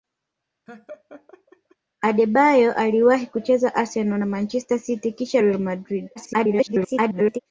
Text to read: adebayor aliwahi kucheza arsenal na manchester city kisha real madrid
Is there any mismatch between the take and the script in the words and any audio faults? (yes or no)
yes